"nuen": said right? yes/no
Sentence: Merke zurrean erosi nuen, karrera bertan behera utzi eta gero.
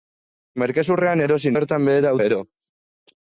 no